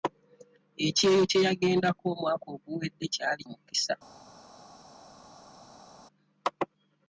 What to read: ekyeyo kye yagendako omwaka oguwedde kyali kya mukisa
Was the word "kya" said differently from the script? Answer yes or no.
yes